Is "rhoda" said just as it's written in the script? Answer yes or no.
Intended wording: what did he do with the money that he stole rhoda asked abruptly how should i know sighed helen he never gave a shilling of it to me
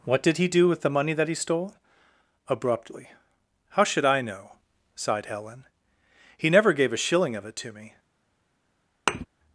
no